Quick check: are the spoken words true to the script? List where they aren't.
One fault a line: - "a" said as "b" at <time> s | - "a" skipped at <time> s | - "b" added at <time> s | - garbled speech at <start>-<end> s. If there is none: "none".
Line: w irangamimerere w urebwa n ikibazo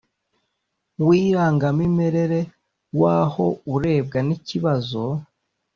- "aho" added at 3.2 s